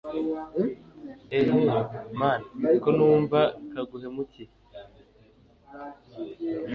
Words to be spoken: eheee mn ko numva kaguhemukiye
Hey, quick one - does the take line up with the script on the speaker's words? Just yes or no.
yes